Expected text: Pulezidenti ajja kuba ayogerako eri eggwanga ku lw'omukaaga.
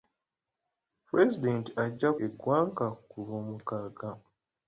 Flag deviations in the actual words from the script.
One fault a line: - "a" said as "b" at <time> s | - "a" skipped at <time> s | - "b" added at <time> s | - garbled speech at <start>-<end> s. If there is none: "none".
- "kuba ayogerako eri" skipped at 2.1 s